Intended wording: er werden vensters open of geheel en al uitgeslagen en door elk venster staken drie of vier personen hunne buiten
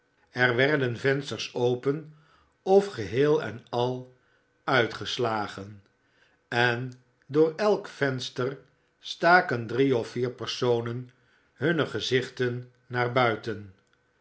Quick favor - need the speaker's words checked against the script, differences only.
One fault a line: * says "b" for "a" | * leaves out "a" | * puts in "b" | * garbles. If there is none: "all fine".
* puts in "gezichten naar"